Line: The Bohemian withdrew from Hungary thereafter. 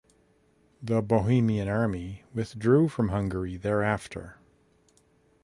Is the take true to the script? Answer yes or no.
no